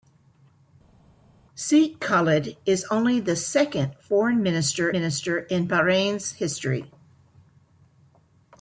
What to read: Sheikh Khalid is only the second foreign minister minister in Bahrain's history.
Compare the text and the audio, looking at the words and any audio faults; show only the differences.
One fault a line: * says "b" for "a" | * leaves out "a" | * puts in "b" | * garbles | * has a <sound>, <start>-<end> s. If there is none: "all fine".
all fine